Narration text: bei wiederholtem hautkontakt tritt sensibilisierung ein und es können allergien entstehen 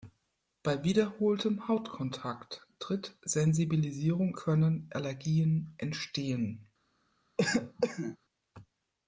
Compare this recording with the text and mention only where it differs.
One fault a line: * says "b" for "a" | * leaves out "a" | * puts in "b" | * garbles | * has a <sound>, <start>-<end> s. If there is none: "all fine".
* leaves out "ein und es"
* has a cough, 7.4-8.2 s